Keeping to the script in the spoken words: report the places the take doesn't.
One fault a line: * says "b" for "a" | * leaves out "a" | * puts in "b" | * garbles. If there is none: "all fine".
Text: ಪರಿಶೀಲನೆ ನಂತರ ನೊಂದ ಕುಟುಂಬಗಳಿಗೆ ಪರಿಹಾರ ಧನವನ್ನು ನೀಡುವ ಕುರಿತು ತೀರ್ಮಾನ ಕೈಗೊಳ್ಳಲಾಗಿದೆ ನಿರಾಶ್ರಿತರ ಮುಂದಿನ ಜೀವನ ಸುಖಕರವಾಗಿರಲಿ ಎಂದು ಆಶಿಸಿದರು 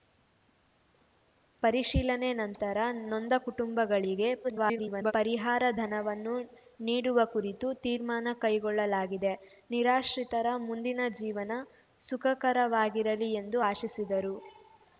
* garbles